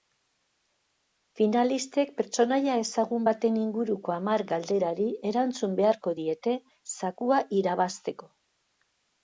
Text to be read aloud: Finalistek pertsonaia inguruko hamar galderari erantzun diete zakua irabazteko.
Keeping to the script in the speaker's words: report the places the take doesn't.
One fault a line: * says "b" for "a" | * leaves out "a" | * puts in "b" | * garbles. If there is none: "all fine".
* puts in "ezagun baten"
* puts in "beharko"